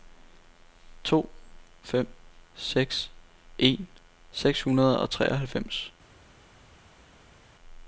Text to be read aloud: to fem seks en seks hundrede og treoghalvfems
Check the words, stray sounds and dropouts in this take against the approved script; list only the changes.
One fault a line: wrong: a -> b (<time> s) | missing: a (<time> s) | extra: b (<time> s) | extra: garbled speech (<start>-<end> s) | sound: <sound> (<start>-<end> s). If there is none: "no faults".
no faults